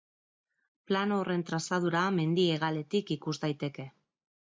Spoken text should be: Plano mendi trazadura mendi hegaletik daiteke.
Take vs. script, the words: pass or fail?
fail